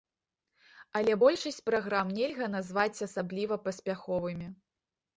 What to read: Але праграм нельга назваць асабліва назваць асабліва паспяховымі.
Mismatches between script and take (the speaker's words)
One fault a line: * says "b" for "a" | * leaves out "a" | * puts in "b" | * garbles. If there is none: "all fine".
* puts in "большасць"
* leaves out "назваць асабліва"